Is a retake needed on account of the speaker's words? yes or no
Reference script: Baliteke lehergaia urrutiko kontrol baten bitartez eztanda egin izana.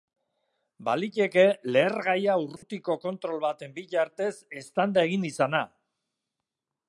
no